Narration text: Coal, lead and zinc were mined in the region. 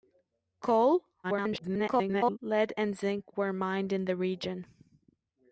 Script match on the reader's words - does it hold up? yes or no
no